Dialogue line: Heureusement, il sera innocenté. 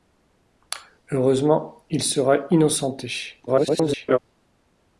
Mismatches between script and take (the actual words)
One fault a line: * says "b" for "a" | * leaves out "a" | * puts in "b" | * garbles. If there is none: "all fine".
* garbles